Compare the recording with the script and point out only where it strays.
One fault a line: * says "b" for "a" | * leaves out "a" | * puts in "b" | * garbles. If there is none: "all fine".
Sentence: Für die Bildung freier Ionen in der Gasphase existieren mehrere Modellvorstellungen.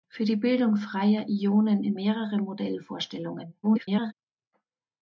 * leaves out "der Gasphase existieren"
* garbles